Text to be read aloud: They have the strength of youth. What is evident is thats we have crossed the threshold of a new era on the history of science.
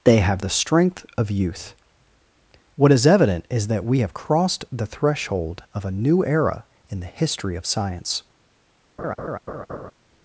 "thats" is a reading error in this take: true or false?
true